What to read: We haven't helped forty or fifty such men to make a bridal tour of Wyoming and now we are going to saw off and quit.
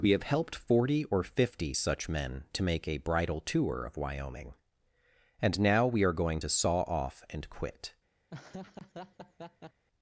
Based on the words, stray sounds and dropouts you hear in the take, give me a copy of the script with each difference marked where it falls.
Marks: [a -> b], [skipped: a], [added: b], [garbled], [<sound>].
We [haven't -> have] helped forty or fifty such men to make a bridal tour of Wyoming and now we are going to saw off and quit. [laugh]